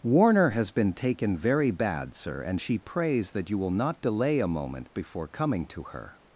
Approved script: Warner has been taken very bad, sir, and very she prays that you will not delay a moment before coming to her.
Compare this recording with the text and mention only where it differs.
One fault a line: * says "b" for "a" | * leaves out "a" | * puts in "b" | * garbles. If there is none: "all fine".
* leaves out "very"